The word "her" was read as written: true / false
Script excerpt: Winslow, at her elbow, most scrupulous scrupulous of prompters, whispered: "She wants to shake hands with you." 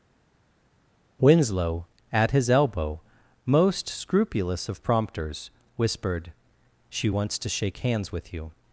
false